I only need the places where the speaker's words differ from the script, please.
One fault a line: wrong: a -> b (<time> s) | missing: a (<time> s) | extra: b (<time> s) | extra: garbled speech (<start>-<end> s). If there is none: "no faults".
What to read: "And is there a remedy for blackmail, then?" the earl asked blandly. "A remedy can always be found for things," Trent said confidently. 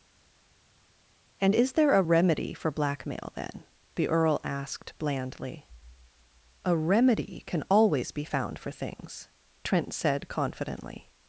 no faults